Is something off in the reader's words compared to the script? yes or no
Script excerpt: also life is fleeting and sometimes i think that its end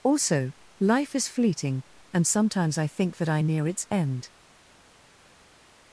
yes